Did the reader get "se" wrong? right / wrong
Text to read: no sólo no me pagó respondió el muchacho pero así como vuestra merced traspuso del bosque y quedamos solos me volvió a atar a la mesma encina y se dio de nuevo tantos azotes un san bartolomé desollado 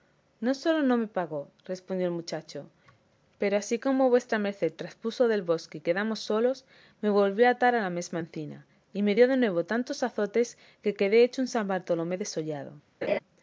wrong